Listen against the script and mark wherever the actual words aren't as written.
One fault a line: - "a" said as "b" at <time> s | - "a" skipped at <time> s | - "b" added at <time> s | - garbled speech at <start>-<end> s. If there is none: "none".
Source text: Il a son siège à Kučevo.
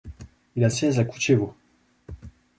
- "son" skipped at 0.7 s